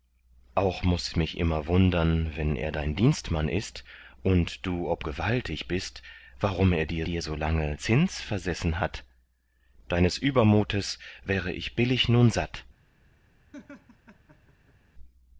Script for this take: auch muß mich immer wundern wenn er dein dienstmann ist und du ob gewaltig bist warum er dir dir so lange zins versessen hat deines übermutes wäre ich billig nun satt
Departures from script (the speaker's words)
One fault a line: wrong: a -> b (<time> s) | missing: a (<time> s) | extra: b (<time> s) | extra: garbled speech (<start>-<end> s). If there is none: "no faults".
no faults